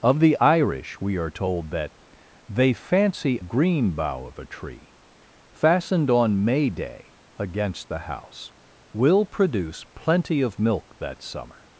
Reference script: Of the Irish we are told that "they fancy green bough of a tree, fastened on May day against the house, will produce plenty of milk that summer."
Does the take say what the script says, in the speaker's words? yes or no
yes